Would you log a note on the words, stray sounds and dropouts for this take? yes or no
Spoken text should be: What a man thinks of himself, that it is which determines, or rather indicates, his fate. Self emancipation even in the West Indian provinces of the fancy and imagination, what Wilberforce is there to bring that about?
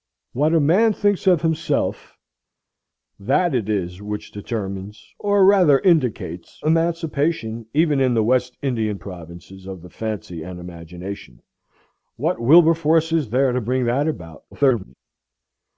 yes